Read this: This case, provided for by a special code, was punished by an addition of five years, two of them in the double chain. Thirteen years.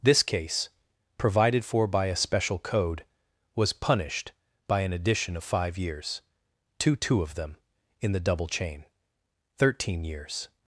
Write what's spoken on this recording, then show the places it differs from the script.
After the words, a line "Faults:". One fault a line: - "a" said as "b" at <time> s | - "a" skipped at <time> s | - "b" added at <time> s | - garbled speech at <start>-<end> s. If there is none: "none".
This case, provided for by a special code, was punished by an addition of five years, two two of them in the double chain. Thirteen years.
Faults:
- "two" added at 7.0 s